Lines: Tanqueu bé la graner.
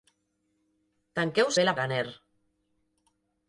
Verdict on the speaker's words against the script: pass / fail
pass